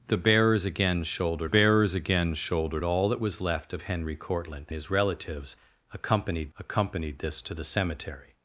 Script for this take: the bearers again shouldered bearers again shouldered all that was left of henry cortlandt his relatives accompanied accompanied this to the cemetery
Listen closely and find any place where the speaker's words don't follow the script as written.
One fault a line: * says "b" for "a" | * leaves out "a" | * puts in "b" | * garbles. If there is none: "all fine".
all fine